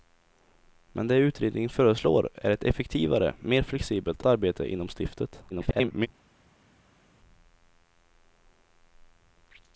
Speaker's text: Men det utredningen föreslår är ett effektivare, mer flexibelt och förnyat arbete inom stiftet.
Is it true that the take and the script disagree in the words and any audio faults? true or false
true